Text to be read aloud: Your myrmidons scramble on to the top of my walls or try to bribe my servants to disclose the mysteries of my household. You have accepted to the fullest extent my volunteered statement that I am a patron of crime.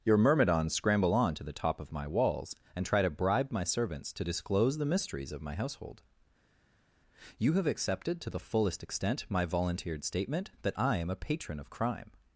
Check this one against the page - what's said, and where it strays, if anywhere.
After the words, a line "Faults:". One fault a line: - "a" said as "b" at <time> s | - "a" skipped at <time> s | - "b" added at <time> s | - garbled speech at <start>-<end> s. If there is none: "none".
Your myrmidons scramble on to the top of my walls and try to bribe my servants to disclose the mysteries of my household. You have accepted to the fullest extent my volunteered statement that I am a patron of crime.
Faults:
- "or" said as "and" at 2.8 s